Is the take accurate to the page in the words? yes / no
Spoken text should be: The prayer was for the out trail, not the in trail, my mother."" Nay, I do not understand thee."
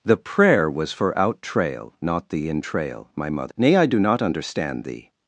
no